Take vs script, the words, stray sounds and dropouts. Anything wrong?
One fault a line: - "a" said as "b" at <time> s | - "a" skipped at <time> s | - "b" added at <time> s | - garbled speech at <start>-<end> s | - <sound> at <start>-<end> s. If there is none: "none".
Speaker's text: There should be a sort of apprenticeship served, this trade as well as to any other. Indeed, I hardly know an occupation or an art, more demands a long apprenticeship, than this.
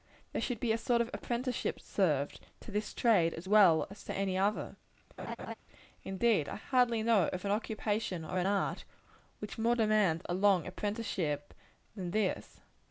- "to" added at 2.6 s
- laugh at 5.2-5.5 s
- "of" added at 7.3 s
- "which" added at 9.4 s